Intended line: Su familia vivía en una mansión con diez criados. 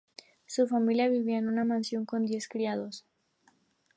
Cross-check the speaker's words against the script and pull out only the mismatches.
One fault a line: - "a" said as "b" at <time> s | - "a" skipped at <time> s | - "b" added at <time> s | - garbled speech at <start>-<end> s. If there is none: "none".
none